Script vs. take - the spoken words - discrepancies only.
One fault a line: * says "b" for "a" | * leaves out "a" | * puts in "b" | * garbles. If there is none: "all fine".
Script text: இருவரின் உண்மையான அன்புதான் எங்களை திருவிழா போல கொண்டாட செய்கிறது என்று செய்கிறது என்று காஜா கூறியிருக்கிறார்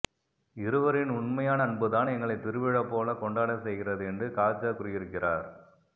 * leaves out "செய்கிறது என்று"